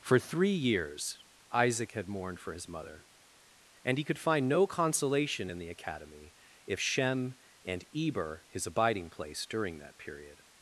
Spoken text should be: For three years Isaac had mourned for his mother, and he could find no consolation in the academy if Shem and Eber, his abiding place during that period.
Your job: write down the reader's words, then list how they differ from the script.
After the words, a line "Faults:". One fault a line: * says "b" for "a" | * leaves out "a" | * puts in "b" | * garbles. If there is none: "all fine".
For three years Isaac had mourned for his mother, and he could find no consolation in the academy if Shem and Eber, his abiding place during that period.
Faults:
all fine